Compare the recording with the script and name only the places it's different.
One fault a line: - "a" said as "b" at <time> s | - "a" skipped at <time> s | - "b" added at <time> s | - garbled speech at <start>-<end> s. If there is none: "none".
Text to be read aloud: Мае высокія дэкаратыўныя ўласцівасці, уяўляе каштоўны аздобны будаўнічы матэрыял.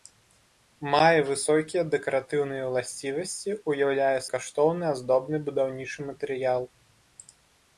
none